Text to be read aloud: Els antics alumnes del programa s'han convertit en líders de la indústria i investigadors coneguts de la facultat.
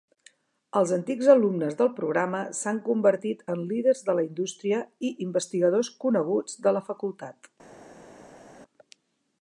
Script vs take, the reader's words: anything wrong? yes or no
no